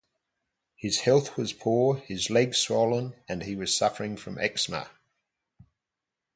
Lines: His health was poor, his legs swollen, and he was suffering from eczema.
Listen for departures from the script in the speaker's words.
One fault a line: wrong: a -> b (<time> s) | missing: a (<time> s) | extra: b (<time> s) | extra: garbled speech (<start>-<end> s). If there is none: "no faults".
no faults